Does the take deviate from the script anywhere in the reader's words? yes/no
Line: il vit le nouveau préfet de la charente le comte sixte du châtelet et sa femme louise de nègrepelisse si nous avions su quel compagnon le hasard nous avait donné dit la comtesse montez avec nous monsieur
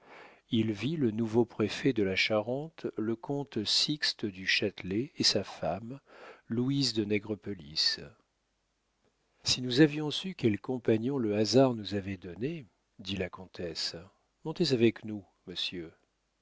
no